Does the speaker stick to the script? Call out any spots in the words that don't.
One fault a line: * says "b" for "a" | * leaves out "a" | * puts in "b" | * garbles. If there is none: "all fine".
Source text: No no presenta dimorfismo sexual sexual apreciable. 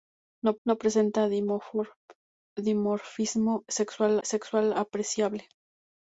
all fine